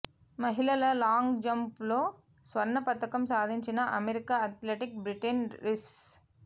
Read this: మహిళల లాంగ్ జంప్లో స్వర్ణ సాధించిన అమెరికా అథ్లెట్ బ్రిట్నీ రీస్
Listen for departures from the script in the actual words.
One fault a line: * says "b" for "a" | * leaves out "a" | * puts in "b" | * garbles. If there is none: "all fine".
* puts in "పతకం"